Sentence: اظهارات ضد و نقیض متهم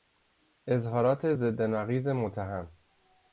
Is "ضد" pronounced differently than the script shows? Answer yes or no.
no